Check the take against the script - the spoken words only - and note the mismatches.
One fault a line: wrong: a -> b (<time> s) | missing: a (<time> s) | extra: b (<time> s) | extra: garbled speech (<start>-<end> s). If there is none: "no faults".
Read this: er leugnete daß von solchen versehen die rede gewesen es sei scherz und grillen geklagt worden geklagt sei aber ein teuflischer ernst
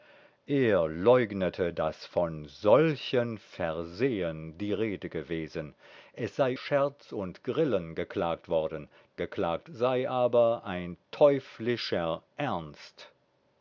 no faults